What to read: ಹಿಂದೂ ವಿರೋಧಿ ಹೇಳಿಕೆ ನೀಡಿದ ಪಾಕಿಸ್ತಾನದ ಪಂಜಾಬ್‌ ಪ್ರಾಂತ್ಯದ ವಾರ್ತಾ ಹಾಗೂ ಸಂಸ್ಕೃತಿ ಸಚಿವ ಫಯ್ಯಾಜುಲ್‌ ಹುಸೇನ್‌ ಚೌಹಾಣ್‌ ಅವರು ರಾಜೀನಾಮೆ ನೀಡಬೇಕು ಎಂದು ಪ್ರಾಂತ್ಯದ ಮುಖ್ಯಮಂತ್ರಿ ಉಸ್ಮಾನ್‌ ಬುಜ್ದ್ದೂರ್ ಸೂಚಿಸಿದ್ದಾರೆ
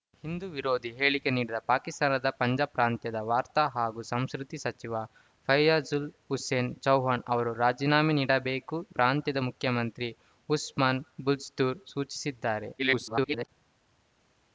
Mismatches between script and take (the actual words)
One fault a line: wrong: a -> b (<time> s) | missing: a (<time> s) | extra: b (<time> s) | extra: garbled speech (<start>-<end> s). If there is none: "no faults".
missing: ಎಂದು (8.8 s)
extra: garbled speech (12.8-13.5 s)